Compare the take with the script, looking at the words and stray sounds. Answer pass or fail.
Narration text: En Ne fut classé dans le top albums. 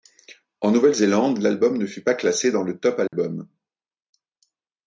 fail